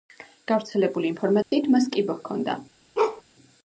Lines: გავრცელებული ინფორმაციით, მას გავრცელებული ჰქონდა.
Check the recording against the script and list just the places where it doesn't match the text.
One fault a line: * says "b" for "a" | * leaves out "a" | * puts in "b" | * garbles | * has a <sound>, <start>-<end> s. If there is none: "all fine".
* has a dropout, 1.4-1.5 s
* says "კიბო" for "გავრცელებული"
* has a bark, 3.0-3.2 s